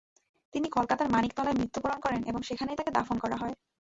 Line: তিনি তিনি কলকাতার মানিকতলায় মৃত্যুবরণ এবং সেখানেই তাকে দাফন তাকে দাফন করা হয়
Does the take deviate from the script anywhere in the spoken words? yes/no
yes